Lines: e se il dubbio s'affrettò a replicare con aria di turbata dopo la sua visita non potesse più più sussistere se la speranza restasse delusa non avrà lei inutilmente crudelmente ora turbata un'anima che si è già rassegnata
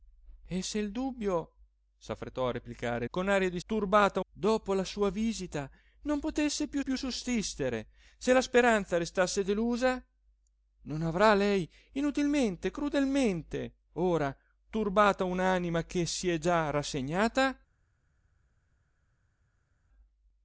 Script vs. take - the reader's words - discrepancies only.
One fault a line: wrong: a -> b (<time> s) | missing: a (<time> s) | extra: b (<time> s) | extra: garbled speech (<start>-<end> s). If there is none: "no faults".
no faults